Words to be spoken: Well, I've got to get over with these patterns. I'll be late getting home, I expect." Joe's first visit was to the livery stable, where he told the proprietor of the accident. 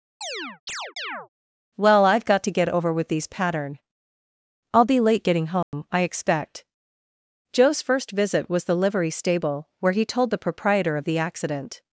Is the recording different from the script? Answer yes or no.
yes